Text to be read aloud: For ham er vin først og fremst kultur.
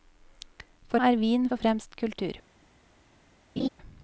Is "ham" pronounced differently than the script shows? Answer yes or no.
yes